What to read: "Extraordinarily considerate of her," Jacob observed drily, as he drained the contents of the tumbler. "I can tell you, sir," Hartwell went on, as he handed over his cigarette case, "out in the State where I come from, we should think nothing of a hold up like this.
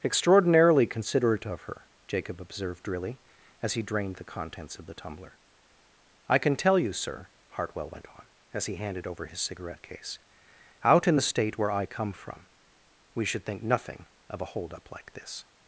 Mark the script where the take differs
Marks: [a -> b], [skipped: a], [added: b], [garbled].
"Extraordinarily considerate of her," Jacob observed drily, as he drained the contents of the tumbler. "I can tell you, sir," Hartwell went on, as he handed over his cigarette case, "out in the State where I come from, we should think nothing of a hold up like this.